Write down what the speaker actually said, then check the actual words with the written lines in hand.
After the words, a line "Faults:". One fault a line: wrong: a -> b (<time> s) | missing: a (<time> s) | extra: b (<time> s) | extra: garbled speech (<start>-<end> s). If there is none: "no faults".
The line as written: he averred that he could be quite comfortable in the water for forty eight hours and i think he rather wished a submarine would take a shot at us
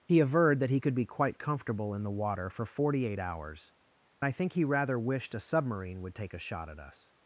he averred that he could be quite comfortable in the water for forty eight hours i think he rather wished a submarine would take a shot at us
Faults:
missing: and (3.7 s)